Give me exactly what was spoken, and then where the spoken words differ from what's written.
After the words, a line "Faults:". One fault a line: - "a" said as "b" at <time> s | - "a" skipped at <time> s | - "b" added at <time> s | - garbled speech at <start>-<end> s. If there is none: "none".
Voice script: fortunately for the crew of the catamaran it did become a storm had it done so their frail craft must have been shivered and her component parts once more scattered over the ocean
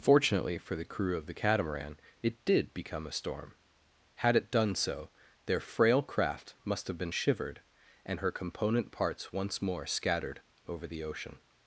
fortunately for the crew of the catamaran it did become a storm had it done so their frail craft must have been shivered and her component parts once more scattered over the ocean
Faults:
none